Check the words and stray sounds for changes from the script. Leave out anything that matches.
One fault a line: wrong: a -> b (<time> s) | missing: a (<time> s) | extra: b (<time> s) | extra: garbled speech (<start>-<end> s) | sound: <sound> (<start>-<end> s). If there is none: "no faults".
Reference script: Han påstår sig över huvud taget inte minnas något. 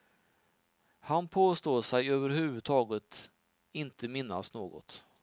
no faults